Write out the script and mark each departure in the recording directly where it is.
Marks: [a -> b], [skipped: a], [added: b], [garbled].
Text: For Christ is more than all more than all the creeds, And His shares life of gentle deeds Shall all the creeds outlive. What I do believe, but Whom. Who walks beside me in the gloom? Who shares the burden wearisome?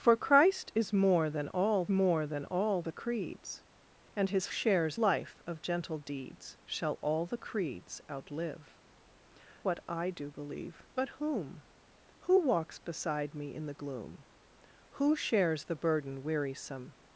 For Christ is more than all more than all the creeds, And His shares life of gentle deeds Shall all the creeds outlive. What I do believe, but Whom. Who walks beside me in the gloom? Who shares the burden wearisome?